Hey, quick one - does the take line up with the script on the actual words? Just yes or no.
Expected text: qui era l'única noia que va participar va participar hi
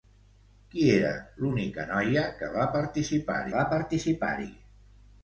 yes